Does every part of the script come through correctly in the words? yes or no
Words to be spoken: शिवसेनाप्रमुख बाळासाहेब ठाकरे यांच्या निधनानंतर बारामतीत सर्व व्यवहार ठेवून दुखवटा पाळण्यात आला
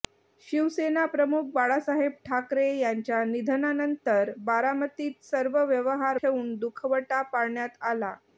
yes